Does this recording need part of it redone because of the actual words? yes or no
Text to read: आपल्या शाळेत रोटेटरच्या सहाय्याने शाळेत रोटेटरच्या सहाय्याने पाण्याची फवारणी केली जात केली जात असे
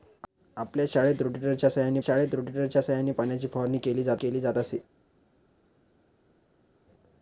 no